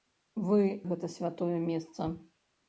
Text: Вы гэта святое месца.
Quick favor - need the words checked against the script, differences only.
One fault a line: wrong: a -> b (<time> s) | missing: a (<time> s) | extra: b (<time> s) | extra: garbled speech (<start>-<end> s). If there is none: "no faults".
no faults